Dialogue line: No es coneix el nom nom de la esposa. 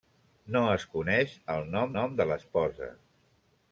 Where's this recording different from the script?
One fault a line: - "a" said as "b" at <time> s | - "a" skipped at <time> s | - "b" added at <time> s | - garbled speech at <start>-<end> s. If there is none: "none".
none